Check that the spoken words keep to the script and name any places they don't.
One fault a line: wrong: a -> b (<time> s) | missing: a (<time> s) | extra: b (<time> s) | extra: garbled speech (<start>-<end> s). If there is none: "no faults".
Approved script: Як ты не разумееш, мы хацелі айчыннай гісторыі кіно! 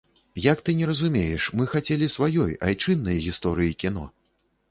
extra: сваёй (2.1 s)